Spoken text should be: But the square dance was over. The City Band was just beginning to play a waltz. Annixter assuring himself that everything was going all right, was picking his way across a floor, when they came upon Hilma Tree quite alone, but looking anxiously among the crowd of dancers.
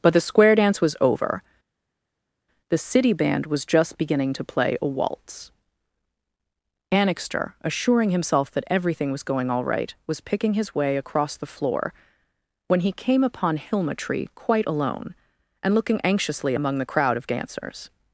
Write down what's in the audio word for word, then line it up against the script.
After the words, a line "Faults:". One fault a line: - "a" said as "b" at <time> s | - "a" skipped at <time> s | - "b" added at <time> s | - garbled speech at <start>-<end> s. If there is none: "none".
But the square dance was over. The City Band was just beginning to play a waltz. Annixter assuring himself that everything was going all right, was picking his way across the floor, when he came upon Hilma Tree quite alone, and looking anxiously among the crowd of dancers.
Faults:
- "a" said as "the" at 11.4 s
- "they" said as "he" at 12.8 s
- "but" said as "and" at 15.6 s